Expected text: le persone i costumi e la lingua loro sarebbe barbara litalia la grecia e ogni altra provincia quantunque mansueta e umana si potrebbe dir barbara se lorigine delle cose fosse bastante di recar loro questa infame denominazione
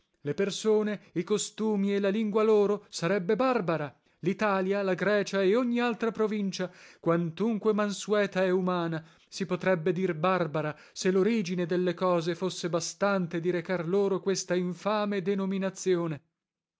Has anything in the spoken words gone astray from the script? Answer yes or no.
no